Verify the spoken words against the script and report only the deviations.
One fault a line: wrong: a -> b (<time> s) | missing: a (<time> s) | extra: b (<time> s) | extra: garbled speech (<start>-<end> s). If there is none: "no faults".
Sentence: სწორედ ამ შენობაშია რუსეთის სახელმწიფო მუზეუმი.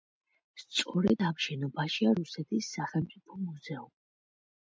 no faults